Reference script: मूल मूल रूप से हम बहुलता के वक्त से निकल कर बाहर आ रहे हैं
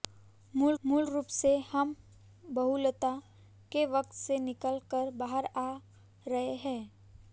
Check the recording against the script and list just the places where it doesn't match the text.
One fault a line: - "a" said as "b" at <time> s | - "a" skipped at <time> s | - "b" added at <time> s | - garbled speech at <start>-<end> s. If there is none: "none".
none